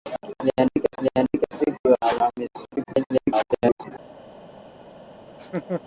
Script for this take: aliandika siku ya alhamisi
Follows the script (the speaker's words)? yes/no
no